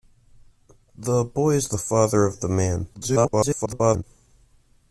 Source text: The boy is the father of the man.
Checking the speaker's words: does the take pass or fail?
fail